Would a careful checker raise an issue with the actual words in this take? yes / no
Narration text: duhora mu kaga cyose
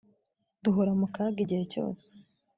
yes